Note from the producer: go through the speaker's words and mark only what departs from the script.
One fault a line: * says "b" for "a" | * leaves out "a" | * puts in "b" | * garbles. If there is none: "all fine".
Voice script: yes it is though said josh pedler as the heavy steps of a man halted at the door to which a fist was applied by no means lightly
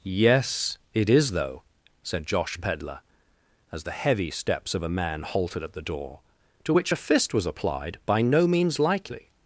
all fine